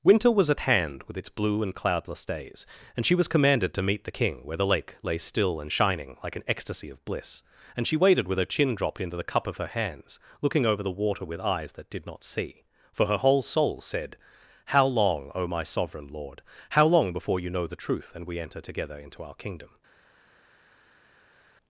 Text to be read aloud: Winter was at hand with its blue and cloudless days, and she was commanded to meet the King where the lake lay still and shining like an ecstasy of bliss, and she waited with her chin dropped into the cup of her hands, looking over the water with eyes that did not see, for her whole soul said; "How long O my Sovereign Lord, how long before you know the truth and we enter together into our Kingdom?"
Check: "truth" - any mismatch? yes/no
no